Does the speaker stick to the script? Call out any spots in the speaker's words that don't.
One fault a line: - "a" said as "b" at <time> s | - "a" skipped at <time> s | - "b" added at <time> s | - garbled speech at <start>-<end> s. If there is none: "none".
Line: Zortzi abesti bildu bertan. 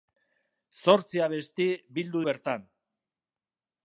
none